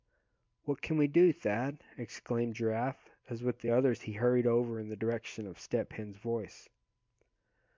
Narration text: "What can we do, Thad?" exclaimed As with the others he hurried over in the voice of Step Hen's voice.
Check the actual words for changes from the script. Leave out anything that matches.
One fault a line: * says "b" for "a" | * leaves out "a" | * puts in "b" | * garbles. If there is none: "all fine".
* puts in "Giraffe"
* says "direction" for "voice"